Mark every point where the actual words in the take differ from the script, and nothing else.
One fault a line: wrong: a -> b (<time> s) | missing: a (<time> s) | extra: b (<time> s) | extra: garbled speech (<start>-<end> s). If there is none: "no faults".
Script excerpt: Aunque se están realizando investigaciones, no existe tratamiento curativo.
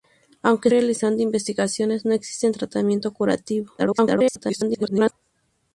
missing: se están (0.7 s)
extra: garbled speech (3.8-5.1 s)